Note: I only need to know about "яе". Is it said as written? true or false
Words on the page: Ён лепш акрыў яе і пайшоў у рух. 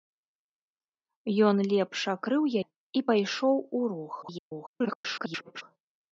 false